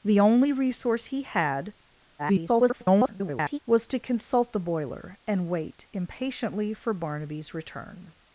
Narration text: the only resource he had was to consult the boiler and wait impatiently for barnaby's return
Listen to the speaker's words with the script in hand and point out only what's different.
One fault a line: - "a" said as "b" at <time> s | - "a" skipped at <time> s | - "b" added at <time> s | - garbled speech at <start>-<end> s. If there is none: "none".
- garbled speech at 2.2-3.6 s